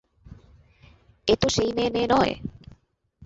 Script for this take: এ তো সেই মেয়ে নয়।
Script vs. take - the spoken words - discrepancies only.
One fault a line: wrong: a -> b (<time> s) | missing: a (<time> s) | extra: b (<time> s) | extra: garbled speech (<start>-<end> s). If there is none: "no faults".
extra: মেয়ে (1.9 s)